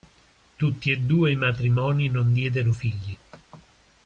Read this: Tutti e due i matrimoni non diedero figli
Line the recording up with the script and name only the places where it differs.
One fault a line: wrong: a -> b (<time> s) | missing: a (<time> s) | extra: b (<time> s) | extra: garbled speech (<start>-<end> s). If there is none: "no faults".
no faults